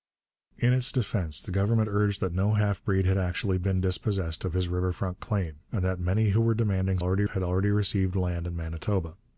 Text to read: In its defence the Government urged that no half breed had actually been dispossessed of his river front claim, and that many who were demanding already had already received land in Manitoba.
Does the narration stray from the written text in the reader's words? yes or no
no